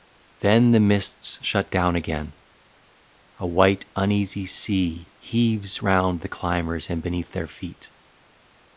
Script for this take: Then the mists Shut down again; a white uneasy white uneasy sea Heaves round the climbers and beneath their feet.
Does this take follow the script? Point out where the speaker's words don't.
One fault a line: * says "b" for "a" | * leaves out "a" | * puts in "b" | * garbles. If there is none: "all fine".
* leaves out "white uneasy"